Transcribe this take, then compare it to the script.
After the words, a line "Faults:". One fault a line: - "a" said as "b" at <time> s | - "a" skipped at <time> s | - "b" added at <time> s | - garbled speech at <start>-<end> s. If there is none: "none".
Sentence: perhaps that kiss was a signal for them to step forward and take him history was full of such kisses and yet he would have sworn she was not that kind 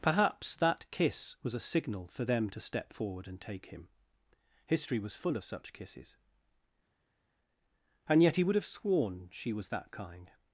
perhaps that kiss was a signal for them to step forward and take him history was full of such kisses and yet he would have sworn she was that kind
Faults:
- "not" skipped at 9.7 s